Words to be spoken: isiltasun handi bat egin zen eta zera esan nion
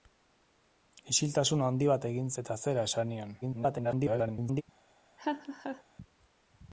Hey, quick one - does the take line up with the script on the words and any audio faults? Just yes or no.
no